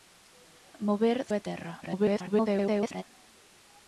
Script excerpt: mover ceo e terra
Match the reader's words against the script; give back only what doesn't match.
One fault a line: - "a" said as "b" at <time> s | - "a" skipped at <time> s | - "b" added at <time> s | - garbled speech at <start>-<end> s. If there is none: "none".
- "ceo" skipped at 1.2 s
- garbled speech at 1.8-3.0 s